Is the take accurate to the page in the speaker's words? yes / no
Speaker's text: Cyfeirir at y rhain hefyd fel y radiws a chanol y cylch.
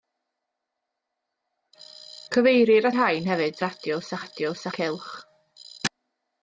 no